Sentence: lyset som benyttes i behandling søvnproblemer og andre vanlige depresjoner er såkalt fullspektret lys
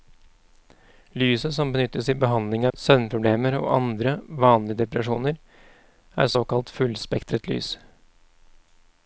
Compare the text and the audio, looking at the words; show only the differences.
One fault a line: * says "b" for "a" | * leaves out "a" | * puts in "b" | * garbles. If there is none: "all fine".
all fine